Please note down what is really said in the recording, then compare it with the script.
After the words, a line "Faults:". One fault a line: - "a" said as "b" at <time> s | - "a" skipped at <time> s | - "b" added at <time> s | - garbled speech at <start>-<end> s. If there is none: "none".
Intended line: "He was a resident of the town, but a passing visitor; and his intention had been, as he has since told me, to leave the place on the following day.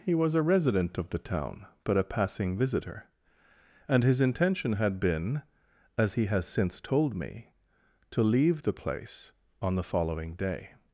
"He was a resident of the town, but a passing visitor; and his intention had been, as he has since told me, to leave the place on the following day.
Faults:
none